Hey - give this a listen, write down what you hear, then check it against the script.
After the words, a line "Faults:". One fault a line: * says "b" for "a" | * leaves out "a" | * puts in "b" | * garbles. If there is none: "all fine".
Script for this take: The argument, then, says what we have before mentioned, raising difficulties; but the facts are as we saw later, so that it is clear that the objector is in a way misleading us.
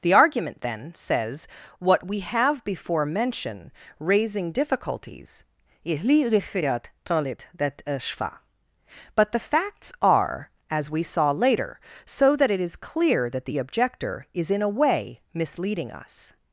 The argument, then, says what we have before mention, raising difficulties; but the facts are as we saw later, so that it is clear that the objector is in a way misleading us.
Faults:
* says "mention" for "mentioned"